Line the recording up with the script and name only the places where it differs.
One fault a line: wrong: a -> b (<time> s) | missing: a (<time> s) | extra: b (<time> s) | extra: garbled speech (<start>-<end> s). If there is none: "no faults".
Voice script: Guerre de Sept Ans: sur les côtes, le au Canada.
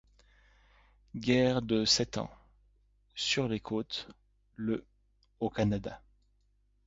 no faults